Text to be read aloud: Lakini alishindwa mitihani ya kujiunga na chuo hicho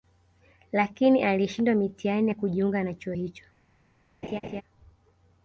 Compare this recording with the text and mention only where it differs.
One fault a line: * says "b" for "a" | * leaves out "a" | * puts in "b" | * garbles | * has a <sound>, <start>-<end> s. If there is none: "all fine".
* has a laugh, 4.2-4.6 s